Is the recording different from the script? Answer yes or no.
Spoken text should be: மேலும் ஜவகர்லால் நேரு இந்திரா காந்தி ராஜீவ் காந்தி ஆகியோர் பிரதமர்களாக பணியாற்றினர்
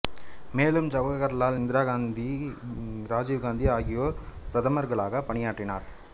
yes